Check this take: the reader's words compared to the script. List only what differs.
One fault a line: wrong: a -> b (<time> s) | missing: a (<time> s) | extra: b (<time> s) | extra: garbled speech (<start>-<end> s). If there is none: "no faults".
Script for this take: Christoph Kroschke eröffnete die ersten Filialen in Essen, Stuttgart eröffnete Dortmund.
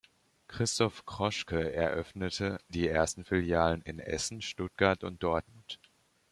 wrong: eröffnete -> und (5.0 s)